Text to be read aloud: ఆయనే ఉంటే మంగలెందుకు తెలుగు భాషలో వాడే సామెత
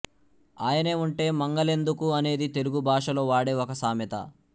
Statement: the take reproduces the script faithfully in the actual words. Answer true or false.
false